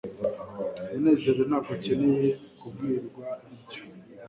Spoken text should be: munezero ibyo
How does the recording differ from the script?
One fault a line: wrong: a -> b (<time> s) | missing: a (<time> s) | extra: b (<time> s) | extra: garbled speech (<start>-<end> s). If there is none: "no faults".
extra: ntabwo akeneye kubwirwa (1.5 s)